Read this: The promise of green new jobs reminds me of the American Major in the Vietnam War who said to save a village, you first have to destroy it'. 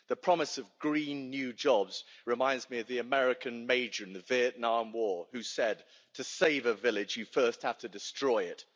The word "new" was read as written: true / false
true